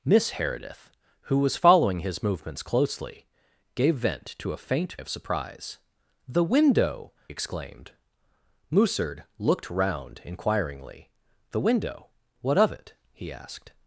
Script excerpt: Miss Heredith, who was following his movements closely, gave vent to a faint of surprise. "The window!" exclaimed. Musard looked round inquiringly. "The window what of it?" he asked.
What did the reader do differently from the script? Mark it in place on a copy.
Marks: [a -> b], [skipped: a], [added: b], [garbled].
Miss Heredith, who was following his movements closely, gave vent to a faint of surprise. "The window!" exclaimed. Musard looked round inquiringly. "The window what of it?" he asked.